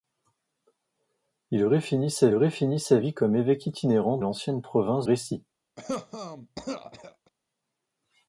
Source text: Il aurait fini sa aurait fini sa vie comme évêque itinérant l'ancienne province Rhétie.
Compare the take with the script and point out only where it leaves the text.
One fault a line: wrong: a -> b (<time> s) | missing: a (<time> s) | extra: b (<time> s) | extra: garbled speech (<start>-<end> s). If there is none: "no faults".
no faults